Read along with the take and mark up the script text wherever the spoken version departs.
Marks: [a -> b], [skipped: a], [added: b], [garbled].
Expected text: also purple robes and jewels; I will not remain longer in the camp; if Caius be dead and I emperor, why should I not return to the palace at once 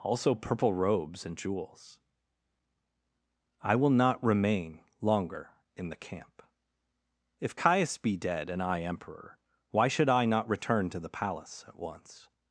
also purple robes and jewels; I will not remain longer in the camp; if Caius be dead and I emperor, why should I not return to the palace at once